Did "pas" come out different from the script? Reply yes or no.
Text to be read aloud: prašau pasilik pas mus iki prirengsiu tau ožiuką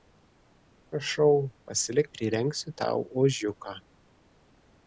yes